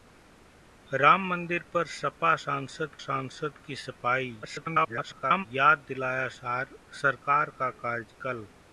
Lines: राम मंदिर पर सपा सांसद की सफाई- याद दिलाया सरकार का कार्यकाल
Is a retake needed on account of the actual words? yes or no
yes